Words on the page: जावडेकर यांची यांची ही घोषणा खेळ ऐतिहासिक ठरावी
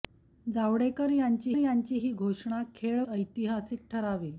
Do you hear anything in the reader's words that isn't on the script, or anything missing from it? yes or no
no